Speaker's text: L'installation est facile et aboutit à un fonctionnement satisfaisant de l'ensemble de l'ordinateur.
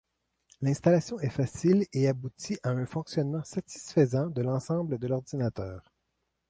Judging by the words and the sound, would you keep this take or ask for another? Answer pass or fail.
pass